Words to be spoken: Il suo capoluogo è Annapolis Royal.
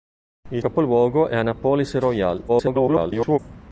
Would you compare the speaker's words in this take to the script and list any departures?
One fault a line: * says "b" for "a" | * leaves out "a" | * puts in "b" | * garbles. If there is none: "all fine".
* leaves out "suo"
* garbles